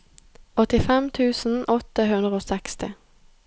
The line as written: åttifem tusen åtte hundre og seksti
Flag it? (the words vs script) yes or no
no